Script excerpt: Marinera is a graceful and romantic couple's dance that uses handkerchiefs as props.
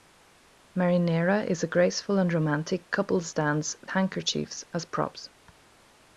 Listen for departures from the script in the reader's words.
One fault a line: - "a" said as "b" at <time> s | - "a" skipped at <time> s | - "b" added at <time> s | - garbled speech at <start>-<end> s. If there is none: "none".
- "that uses" skipped at 3.8 s